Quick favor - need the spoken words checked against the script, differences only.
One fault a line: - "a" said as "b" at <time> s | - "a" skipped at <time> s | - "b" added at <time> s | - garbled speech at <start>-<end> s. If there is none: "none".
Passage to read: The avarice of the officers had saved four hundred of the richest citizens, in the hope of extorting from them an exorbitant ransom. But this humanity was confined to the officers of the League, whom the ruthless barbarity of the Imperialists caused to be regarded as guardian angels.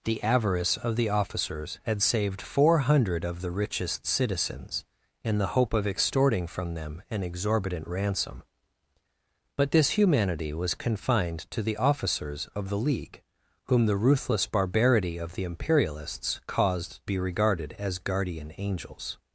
- "to" skipped at 17.1 s